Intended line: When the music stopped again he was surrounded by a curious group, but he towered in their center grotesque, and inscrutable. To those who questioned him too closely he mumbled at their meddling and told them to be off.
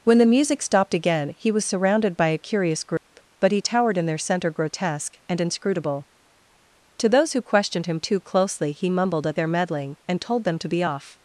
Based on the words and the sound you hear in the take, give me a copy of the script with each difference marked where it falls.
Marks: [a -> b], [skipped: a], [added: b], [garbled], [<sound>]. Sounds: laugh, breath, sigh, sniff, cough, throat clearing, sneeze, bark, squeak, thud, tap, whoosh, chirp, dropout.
When the music stopped again he was surrounded by a curious group, [dropout] but he towered in their center grotesque, and inscrutable. To those who questioned him too closely he mumbled at their meddling and told them to be off.